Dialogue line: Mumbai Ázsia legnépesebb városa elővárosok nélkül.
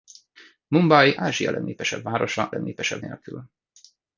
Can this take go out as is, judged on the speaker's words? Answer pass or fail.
fail